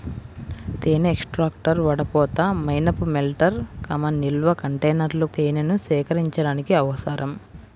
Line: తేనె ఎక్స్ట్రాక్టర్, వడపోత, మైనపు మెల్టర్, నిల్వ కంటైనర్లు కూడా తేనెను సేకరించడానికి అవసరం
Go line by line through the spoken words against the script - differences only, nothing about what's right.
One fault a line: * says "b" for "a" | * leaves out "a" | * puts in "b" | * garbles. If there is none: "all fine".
* leaves out "కూడా"